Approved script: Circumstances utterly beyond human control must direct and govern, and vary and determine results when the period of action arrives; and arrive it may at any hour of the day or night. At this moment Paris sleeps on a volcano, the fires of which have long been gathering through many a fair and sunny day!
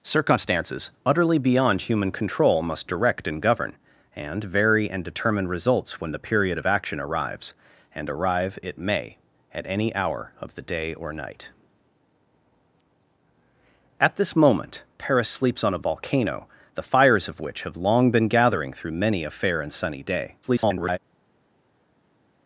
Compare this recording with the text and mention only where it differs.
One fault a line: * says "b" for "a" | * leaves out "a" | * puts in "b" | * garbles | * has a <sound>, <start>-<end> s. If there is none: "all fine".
* garbles